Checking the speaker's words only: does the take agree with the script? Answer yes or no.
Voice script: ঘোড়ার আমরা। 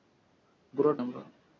yes